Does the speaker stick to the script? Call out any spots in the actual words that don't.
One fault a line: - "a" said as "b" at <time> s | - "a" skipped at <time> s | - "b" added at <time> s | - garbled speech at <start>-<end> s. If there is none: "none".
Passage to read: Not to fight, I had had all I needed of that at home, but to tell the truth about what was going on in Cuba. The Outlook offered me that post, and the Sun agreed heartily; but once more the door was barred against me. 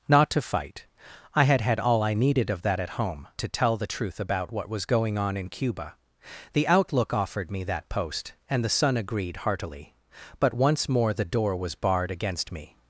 - "but" skipped at 3.3 s